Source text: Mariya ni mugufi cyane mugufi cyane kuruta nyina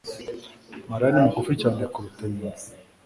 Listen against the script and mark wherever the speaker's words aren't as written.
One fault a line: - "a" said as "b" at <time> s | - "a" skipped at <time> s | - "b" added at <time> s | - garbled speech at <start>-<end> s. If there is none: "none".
- "mugufi cyane" skipped at 1.8 s